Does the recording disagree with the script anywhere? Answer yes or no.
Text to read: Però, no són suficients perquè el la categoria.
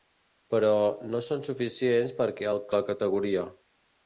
no